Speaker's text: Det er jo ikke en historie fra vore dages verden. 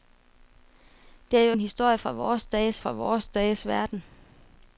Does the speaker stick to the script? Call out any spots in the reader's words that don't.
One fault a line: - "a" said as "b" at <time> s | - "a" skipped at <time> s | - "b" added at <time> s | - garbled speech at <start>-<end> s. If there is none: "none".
- "ikke" skipped at 1.6 s
- "fra vore dages" added at 2.8 s